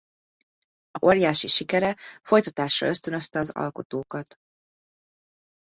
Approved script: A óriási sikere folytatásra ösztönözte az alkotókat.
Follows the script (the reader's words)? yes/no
yes